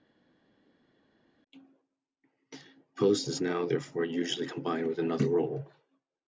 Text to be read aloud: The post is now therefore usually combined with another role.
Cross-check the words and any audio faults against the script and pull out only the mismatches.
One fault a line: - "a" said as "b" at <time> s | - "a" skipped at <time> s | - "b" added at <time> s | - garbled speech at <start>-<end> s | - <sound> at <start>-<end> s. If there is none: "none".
none